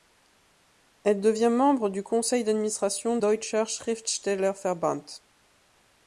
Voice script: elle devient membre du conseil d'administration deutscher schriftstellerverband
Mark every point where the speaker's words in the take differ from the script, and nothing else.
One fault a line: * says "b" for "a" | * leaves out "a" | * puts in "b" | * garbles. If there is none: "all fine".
all fine